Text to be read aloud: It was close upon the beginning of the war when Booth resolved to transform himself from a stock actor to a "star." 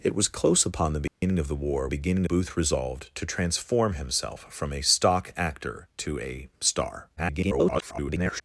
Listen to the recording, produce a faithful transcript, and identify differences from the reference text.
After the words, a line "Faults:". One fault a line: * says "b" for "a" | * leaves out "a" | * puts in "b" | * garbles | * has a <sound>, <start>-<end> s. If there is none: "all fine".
It was close upon the beginning of the war beginning Booth resolved to transform himself from a stock actor to a "star." [garbled]
Faults:
* has a dropout, 1.1-1.2 s
* says "beginning" for "when"
* garbles